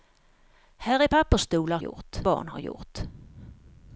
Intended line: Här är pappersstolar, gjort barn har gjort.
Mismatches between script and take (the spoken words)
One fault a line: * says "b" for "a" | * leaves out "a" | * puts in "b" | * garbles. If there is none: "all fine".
all fine